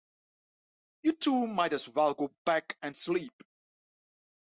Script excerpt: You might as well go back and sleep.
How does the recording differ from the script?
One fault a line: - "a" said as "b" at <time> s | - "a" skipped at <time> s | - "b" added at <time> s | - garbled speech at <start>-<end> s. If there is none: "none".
- "two" added at 1.1 s